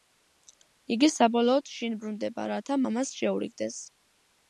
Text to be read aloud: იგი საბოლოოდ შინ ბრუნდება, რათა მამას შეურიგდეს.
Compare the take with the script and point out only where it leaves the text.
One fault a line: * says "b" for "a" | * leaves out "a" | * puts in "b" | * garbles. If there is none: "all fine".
all fine